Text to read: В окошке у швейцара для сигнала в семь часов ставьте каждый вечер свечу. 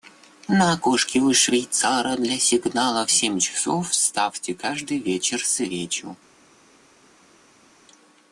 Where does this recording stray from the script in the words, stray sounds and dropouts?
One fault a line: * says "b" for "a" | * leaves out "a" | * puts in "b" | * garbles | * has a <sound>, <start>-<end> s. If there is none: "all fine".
* says "На" for "В"